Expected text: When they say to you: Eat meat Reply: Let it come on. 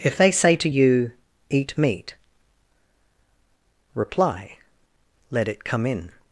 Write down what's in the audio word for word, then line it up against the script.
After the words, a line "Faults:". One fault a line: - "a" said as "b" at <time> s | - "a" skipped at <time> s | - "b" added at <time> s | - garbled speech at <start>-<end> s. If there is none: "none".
If they say to you: Eat meat Reply: Let it come in.
Faults:
- "When" said as "If" at 0.0 s
- "on" said as "in" at 5.9 s